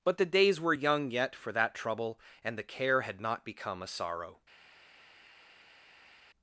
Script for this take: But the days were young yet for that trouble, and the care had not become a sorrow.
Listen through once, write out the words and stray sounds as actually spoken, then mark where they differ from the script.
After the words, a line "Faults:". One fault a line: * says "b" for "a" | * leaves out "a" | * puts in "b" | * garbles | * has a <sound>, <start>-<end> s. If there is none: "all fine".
But the days were young yet for that trouble, and the care had not become a sorrow.
Faults:
all fine